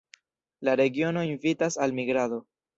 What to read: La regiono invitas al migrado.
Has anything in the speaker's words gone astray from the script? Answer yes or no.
no